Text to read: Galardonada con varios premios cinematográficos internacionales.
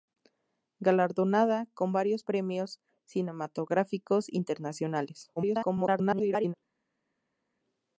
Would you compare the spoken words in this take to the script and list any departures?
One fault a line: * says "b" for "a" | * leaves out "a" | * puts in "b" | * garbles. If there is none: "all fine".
* garbles